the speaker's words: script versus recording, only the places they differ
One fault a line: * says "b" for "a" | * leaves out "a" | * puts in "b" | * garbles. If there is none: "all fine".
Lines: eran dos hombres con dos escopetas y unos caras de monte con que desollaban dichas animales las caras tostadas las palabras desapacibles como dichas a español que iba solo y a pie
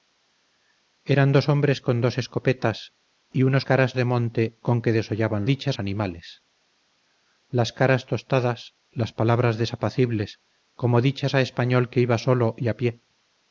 all fine